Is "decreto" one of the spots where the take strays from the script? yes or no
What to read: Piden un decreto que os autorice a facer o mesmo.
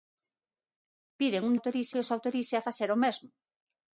yes